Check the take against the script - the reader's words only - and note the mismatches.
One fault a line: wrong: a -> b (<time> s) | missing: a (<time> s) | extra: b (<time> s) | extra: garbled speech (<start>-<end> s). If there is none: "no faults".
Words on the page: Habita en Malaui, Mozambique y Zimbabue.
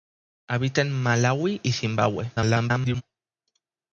missing: Mozambique (1.6 s)
extra: garbled speech (2.4-3.0 s)